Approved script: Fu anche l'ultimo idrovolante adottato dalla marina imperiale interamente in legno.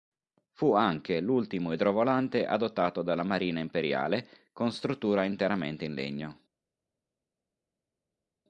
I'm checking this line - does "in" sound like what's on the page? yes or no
yes